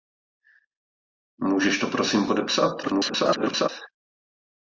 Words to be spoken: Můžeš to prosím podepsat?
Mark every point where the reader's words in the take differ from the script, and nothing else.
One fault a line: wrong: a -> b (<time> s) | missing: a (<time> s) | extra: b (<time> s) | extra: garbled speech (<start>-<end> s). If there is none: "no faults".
extra: garbled speech (2.8-3.7 s)